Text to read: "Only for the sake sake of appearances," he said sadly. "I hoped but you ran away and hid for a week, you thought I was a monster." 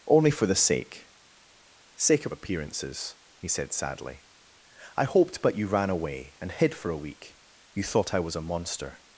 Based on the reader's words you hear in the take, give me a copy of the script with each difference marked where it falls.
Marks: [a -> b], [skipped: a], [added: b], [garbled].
"Only for the sake sake of appearances," he said sadly. "I hoped but you ran away and hid for a week, you thought I was a monster."